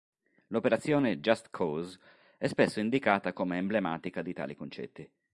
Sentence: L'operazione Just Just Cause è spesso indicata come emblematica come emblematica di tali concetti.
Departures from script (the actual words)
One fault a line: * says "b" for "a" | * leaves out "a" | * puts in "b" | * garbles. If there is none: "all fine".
* leaves out "Just"
* leaves out "come emblematica"